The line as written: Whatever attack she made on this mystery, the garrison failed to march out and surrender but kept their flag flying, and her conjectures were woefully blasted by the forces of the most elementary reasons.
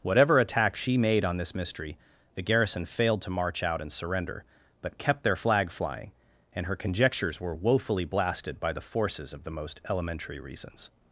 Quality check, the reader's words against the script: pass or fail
pass